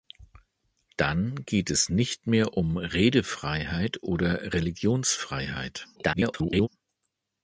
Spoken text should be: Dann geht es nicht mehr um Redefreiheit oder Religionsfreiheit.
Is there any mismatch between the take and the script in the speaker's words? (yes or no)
yes